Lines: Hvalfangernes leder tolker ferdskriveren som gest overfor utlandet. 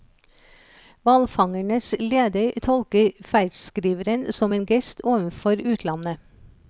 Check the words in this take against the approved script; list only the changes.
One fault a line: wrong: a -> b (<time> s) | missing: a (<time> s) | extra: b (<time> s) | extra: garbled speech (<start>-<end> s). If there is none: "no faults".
extra: en (4.5 s)